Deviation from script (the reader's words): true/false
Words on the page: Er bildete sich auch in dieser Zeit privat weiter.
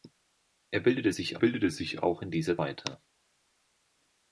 true